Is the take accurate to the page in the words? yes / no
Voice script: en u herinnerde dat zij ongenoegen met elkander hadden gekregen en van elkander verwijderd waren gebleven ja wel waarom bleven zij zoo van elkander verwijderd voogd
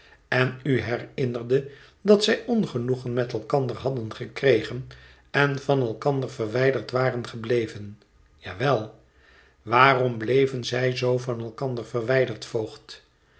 yes